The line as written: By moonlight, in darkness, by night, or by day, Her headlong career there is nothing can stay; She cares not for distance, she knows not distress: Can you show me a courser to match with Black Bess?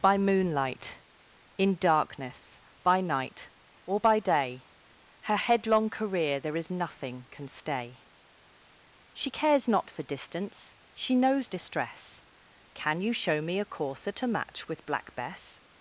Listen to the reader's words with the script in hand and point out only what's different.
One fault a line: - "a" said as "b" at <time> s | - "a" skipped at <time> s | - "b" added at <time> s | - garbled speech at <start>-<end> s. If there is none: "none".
- "not" skipped at 11.5 s